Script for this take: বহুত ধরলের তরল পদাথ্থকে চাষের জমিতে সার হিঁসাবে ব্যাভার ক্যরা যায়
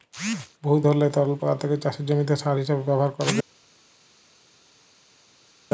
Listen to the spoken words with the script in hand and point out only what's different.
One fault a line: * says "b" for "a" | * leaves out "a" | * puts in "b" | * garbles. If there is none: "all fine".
all fine